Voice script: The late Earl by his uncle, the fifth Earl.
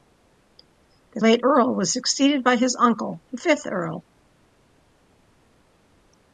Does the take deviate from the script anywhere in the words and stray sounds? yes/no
yes